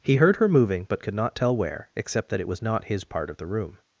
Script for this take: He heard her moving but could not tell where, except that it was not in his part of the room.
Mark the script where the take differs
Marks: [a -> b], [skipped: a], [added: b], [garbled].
He heard her moving but could not tell where, except that it was not [skipped: in] his part of the room.